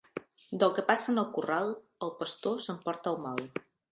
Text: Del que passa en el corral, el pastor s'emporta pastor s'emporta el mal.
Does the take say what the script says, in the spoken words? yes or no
no